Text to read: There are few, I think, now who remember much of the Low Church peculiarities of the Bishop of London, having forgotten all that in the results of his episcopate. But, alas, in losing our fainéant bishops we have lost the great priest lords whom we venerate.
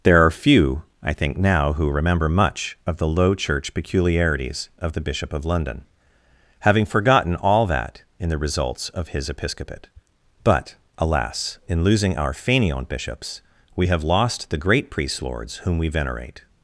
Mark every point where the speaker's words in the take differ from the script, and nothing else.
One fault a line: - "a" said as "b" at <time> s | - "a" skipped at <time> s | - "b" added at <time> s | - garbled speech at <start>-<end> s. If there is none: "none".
none